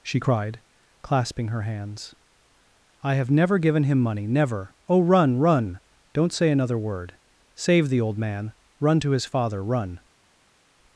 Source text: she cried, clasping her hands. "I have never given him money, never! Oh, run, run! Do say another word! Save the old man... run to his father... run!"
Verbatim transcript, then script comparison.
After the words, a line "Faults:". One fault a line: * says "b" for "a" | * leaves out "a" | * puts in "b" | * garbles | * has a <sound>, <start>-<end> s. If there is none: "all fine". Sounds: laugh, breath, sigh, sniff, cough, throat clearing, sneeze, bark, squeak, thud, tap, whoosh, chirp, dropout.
she cried, clasping her hands. "I have never given him money, never! Oh, run, run! Don't say another word! Save the old man... run to his father... run!"
Faults:
* says "Don't" for "Do"